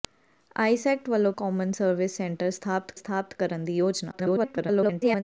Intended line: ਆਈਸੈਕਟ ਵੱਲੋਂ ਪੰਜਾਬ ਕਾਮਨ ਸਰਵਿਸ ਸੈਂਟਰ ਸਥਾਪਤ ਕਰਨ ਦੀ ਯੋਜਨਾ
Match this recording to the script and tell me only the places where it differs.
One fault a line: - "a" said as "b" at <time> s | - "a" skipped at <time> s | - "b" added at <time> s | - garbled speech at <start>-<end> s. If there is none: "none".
- "ਪੰਜਾਬ" skipped at 1.3 s
- "ਸਥਾਪਤ" added at 2.9 s
- garbled speech at 4.1-5.2 s